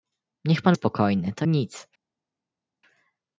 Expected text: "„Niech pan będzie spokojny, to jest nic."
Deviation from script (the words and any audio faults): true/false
true